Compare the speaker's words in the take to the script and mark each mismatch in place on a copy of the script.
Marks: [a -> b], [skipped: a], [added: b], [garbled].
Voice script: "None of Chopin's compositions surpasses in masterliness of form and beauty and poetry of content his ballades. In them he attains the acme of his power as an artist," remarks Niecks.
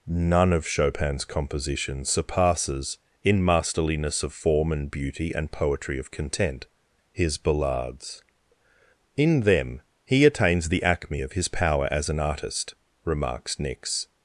"None of Chopin's compositions surpasses in masterliness of form and beauty and poetry of content his ballades. In them he attains the acme of his power as an artist," remarks Niecks.